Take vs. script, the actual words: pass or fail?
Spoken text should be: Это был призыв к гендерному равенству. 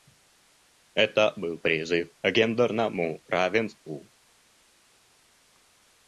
pass